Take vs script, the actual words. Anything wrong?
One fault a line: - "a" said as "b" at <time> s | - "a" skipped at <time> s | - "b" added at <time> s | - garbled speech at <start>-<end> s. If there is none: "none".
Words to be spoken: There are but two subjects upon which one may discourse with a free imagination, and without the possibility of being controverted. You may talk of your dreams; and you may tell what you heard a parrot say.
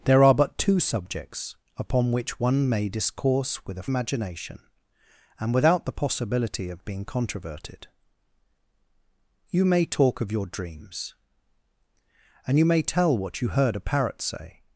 - "free" skipped at 3.9 s